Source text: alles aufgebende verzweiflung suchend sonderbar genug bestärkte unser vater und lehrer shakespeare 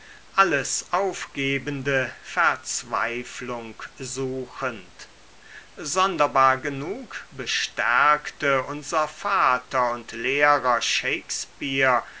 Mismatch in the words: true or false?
false